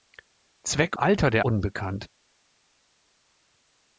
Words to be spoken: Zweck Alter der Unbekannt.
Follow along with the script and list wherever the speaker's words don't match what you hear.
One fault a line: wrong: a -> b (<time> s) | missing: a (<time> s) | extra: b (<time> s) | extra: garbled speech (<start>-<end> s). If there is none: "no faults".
no faults